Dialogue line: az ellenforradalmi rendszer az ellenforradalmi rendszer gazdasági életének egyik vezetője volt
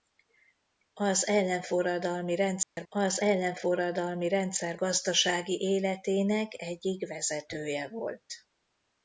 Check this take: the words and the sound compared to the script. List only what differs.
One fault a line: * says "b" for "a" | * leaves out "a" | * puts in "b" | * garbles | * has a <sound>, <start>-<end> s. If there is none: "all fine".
* has a dropout, 2.6-2.8 s